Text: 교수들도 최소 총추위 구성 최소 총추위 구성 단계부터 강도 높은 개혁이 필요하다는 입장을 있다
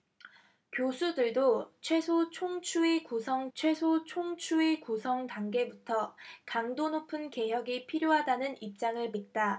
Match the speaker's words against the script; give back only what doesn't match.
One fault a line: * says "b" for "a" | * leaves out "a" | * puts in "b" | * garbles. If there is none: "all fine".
all fine